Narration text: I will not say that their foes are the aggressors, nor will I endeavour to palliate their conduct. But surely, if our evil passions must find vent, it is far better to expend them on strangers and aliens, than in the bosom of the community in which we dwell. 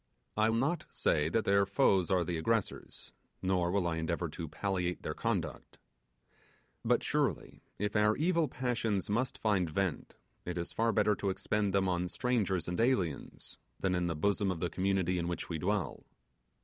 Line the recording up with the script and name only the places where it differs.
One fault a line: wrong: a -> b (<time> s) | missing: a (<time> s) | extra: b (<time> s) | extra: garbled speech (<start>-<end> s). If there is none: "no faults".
missing: will (0.5 s)